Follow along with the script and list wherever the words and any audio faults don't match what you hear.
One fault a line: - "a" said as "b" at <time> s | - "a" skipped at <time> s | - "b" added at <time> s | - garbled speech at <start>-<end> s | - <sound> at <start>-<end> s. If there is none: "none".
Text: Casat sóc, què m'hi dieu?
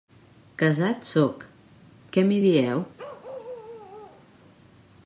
- bark at 3.0-4.3 s